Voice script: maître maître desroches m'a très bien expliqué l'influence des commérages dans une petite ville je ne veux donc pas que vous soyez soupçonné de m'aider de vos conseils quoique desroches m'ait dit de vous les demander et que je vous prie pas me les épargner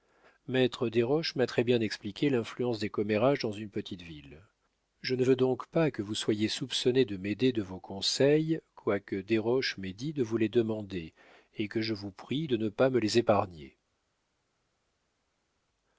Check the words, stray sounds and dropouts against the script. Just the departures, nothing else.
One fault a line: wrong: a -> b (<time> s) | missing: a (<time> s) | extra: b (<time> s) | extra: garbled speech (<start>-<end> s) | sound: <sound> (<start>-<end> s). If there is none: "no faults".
missing: maître (0.9 s)
extra: de ne (12.4 s)